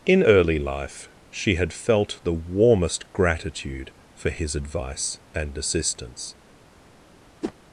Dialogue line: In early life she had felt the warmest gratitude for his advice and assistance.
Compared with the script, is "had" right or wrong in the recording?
right